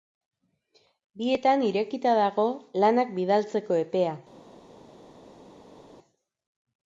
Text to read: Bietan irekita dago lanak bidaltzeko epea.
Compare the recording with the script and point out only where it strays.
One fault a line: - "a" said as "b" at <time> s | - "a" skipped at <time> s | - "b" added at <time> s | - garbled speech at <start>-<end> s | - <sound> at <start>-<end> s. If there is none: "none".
none